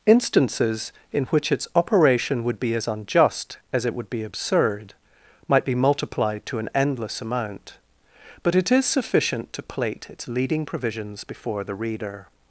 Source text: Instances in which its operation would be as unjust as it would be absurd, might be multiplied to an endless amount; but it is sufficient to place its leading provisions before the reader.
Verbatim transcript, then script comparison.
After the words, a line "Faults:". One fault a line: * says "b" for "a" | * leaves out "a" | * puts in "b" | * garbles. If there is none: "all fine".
Instances in which its operation would be as unjust as it would be absurd, might be multiplied to an endless amount; but it is sufficient to plate its leading provisions before the reader.
Faults:
* says "plate" for "place"